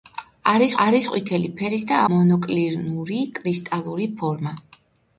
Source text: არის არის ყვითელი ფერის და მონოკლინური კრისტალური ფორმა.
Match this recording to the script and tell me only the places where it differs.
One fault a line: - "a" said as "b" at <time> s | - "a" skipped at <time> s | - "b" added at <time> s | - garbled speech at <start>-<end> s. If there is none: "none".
none